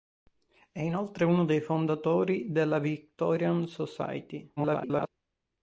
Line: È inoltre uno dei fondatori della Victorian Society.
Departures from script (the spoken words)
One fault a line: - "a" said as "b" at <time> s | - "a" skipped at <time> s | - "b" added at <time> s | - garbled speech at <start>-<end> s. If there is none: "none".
- garbled speech at 4.6-5.1 s